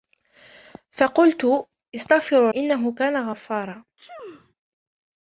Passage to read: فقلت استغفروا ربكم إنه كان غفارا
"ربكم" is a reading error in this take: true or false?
true